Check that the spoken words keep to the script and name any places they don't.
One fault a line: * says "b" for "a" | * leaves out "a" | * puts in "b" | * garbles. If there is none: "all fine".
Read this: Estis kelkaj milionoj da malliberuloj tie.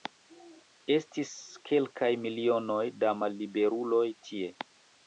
all fine